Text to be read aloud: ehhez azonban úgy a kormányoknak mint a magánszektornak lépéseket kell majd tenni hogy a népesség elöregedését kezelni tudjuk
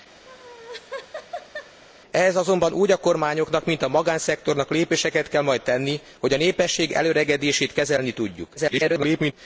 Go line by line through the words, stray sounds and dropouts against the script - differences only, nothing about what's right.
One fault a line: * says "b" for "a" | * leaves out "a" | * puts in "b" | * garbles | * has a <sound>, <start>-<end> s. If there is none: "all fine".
* has a laugh, 0.3-1.8 s
* garbles